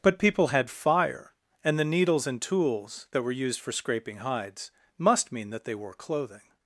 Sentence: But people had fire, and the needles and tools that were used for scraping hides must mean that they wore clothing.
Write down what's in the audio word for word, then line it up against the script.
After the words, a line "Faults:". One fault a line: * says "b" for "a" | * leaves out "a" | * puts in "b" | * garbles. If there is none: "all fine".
But people had fire, and the needles and tools that were used for scraping hides must mean that they wore clothing.
Faults:
all fine